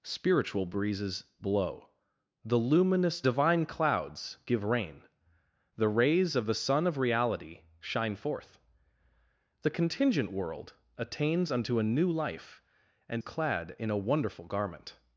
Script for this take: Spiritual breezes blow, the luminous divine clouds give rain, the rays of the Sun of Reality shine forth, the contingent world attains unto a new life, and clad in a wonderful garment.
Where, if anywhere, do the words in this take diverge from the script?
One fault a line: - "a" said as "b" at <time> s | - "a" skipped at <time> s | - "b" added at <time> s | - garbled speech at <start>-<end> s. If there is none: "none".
none